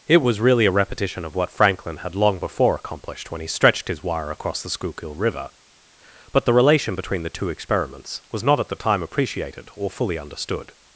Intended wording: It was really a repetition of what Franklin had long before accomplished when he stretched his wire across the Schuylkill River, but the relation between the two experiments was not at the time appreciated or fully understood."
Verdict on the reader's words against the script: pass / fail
pass